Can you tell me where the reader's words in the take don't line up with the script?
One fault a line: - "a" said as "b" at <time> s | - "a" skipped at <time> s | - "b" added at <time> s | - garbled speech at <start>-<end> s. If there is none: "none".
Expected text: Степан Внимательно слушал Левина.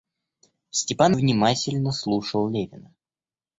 none